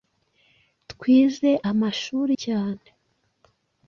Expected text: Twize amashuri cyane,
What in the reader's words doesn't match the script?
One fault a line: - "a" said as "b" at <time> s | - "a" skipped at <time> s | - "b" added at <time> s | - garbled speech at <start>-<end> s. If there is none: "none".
none